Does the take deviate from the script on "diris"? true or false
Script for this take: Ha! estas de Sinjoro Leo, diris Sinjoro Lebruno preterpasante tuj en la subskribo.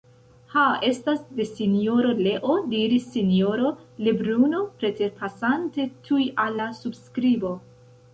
false